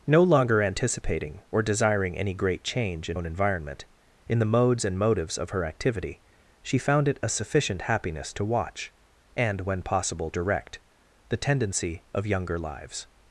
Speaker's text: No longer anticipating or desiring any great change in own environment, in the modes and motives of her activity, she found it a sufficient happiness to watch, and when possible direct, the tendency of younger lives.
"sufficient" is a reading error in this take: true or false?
false